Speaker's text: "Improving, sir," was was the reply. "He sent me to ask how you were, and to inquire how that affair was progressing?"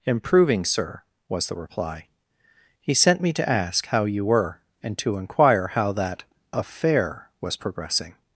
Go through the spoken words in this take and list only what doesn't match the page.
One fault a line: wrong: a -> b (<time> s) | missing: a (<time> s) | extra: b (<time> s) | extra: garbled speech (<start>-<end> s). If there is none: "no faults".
missing: was (1.5 s)